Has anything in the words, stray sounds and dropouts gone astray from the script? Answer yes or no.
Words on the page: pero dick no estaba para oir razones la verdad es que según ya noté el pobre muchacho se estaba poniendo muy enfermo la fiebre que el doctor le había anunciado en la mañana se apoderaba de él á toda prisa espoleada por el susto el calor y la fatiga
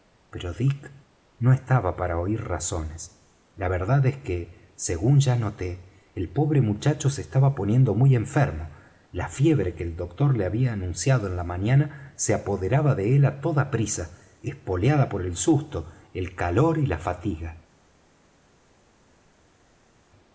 no